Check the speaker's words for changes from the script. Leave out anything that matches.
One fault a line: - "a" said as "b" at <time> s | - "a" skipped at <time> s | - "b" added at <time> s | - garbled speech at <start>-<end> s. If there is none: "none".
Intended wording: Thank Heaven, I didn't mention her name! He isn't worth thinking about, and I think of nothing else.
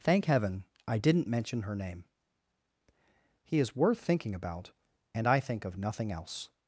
- "isn't" said as "is" at 3.6 s